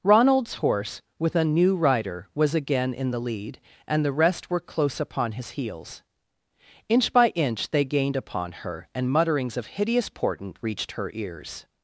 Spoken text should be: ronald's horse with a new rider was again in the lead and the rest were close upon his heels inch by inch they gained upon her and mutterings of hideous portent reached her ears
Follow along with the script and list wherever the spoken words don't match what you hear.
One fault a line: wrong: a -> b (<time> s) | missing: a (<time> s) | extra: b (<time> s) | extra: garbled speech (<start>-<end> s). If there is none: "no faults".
no faults